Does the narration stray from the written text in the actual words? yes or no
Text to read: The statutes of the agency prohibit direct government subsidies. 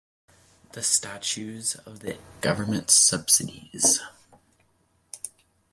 yes